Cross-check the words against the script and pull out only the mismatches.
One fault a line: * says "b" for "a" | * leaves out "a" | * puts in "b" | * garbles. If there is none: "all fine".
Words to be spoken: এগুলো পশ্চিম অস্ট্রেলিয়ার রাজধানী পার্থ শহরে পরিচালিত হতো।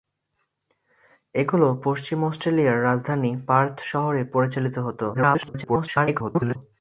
* garbles